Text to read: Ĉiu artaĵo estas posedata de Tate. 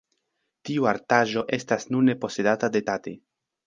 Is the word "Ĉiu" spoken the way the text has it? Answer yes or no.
no